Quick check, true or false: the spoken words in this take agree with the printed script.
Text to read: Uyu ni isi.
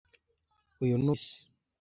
true